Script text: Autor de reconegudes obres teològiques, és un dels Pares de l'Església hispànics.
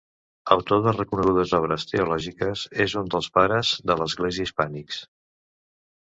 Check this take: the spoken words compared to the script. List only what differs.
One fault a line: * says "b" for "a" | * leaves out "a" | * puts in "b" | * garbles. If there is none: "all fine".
all fine